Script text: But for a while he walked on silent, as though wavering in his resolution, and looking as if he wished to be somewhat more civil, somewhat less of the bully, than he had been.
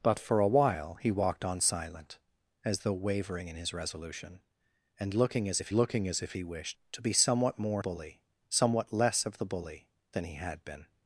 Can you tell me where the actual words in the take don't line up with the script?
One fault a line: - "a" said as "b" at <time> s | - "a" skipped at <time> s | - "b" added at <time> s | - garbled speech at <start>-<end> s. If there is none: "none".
- "looking as if" added at 5.7 s
- "civil" said as "bully" at 7.8 s